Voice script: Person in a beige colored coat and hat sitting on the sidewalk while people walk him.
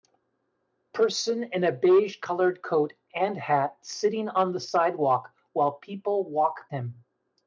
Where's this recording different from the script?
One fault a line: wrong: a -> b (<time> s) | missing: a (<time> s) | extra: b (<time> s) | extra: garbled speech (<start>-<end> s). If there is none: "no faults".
no faults